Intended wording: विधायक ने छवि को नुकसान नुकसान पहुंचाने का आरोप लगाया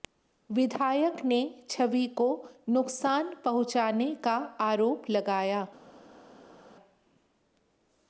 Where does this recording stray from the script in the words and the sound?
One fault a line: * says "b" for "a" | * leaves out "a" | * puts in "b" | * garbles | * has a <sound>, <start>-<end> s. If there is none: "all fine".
* leaves out "नुकसान"